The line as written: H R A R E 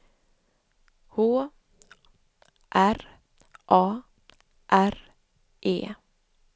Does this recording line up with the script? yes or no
yes